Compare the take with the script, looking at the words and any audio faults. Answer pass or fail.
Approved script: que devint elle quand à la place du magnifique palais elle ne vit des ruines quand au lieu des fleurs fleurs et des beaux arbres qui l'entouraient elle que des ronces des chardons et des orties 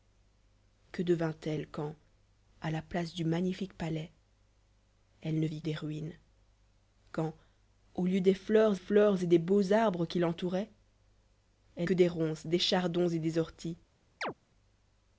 fail